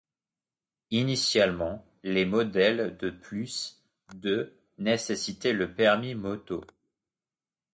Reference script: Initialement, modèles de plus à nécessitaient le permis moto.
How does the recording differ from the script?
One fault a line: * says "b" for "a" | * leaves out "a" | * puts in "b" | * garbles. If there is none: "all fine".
* puts in "les"
* says "de" for "à"